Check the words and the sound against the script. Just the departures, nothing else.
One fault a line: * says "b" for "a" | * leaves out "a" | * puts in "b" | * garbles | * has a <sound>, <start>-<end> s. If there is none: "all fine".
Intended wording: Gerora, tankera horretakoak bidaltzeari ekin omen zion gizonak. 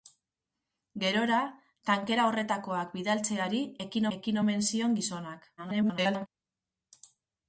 * puts in "ekin"
* garbles